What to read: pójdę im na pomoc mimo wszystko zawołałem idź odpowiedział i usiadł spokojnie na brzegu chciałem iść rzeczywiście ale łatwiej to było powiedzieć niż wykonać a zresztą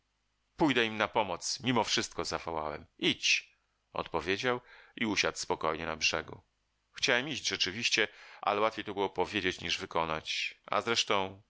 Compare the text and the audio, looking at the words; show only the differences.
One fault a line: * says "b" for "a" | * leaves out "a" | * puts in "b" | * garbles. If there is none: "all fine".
all fine